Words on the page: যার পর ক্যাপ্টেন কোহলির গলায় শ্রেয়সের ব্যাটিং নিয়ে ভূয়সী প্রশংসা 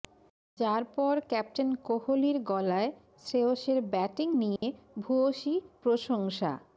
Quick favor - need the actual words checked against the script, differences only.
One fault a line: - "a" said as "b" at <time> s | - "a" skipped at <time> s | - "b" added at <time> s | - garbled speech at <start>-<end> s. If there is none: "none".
none